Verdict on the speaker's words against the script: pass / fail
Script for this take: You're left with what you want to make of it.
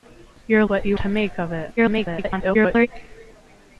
fail